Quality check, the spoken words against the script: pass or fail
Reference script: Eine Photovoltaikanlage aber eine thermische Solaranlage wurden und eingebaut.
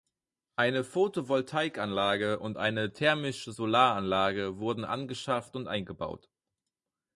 fail